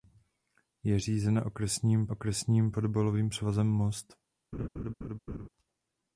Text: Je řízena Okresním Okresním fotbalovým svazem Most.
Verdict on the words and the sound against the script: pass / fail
fail